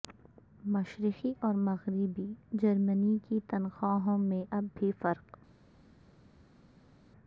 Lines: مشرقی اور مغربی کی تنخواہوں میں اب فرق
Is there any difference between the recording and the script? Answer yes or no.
yes